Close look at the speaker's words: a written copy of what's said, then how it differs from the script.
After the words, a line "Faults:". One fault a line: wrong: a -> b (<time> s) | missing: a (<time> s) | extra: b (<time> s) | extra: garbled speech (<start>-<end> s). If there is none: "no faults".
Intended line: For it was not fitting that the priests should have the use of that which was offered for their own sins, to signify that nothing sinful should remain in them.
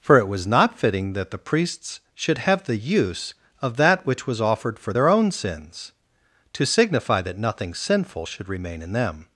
For it was not fitting that the priests should have the use of that which was offered for their own sins, to signify that nothing sinful should remain in them.
Faults:
no faults